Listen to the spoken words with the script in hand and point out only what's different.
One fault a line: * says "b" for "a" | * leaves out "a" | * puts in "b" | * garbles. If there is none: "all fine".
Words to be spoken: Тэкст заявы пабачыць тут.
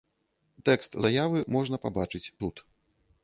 * puts in "можна"